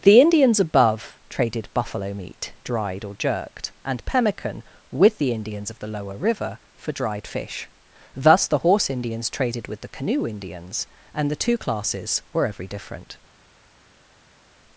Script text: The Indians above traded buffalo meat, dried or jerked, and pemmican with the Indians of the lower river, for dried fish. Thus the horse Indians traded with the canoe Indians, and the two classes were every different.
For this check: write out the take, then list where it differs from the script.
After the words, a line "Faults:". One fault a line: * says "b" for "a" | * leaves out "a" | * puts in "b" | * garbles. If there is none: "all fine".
The Indians above traded buffalo meat, dried or jerked, and pemmican with the Indians of the lower river, for dried fish. Thus the horse Indians traded with the canoe Indians, and the two classes were every different.
Faults:
all fine